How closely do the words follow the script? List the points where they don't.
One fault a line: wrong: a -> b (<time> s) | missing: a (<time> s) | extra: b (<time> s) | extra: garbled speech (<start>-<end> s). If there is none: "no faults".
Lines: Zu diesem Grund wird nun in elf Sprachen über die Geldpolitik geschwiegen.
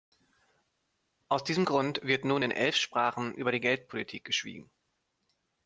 wrong: Zu -> Aus (1.3 s)